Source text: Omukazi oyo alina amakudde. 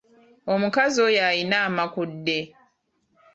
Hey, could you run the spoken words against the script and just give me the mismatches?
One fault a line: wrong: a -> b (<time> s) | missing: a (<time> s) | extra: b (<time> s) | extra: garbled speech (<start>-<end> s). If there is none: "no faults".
no faults